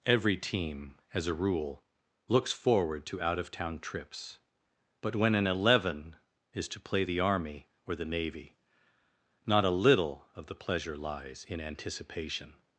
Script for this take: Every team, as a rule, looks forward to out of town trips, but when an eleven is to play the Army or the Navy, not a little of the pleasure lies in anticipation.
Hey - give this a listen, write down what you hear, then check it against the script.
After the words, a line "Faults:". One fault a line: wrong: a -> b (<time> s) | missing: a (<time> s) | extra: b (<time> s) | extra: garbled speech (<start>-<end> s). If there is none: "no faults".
Every team, as a rule, looks forward to out of town trips, but when an eleven is to play the Army or the Navy, not a little of the pleasure lies in anticipation.
Faults:
no faults